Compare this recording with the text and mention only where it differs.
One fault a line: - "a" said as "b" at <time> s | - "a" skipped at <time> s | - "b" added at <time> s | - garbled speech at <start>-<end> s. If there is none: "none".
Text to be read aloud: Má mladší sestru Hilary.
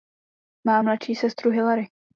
none